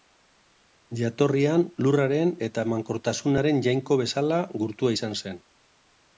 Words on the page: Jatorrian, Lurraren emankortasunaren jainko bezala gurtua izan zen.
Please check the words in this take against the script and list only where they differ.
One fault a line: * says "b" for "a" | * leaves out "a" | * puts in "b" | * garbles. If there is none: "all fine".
* puts in "eta"